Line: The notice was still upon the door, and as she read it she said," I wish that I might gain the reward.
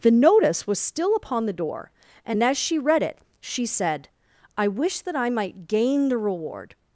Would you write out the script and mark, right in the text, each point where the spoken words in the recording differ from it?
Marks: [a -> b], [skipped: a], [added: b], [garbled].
The notice was still upon the door, and as she read it she said," I wish that I might gain the reward.